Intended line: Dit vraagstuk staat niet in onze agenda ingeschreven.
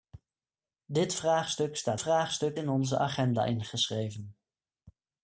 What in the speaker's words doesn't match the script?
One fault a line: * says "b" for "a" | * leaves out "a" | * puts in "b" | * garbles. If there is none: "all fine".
* says "vraagstuk" for "niet"